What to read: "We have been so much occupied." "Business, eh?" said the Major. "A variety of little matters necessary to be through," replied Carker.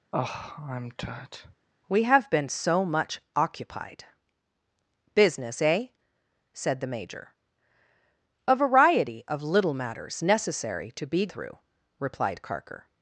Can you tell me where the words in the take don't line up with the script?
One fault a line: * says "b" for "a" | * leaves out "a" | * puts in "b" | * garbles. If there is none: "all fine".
all fine